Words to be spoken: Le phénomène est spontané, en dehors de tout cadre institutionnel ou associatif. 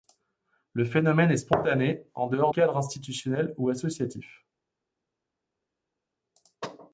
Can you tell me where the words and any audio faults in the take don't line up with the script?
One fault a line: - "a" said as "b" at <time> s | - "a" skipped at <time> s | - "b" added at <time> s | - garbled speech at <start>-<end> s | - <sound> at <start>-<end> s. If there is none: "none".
- "de tout" skipped at 2.5 s